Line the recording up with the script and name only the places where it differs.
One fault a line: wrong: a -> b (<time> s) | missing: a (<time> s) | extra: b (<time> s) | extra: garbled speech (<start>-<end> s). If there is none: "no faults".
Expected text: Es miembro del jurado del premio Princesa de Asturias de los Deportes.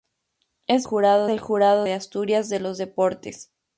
wrong: miembro -> jurado (0.8 s)
missing: del premio Princesa (1.8 s)